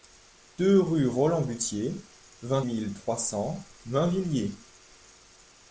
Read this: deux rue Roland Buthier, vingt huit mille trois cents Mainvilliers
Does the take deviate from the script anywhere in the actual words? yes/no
yes